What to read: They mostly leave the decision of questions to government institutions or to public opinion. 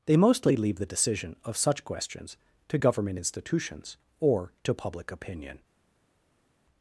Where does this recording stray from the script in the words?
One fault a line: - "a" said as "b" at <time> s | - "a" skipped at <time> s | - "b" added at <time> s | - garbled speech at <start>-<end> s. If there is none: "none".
- "such" added at 1.6 s